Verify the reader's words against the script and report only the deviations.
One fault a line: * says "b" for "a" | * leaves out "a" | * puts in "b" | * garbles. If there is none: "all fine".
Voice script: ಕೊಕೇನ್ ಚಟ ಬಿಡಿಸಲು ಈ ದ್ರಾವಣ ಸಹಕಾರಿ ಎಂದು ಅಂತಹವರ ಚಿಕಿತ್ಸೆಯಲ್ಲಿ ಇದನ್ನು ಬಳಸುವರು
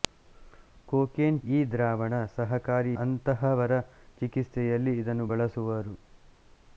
* leaves out "ಚಟ ಬಿಡಿಸಲು"
* leaves out "ಎಂದು"